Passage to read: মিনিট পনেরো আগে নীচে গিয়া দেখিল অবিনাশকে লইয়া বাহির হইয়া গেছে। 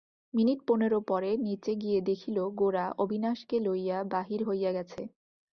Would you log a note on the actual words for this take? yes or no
yes